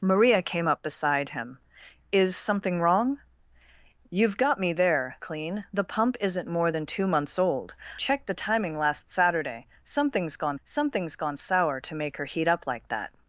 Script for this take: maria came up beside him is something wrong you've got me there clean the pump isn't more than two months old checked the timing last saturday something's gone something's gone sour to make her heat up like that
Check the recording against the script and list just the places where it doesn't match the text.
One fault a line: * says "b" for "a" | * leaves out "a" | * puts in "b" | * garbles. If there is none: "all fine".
all fine